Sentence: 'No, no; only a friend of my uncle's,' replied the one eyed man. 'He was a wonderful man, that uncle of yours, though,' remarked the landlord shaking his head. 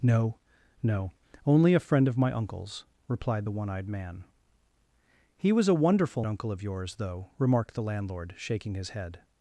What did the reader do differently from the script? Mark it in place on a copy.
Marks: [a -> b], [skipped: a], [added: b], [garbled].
'No, no; only a friend of my uncle's,' replied the one eyed man. 'He was a wonderful [skipped: man, that] uncle of yours, though,' remarked the landlord shaking his head.